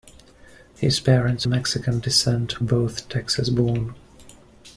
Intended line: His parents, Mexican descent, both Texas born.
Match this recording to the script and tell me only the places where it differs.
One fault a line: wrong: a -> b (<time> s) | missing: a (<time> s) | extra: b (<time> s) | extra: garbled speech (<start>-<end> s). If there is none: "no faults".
no faults